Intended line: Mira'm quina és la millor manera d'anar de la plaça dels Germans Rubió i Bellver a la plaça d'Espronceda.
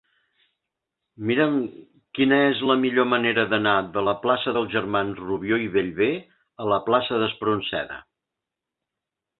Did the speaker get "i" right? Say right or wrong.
right